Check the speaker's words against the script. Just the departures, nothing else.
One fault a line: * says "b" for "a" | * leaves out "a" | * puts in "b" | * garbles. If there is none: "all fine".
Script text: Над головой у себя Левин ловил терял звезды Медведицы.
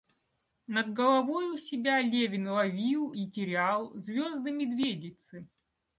* puts in "и"